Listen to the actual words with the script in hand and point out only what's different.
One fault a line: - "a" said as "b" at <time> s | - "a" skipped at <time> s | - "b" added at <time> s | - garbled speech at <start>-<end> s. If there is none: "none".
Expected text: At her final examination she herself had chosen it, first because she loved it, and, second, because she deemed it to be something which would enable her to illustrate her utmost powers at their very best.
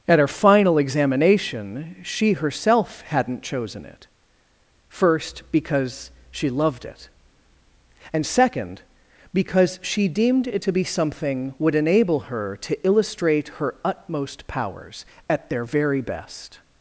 - "had" said as "hadn't" at 3.1 s
- "which" skipped at 11.5 s